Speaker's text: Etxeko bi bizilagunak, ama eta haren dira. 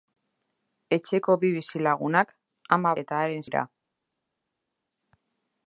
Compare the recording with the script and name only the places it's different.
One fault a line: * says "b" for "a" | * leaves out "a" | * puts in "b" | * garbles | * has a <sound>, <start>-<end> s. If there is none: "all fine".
all fine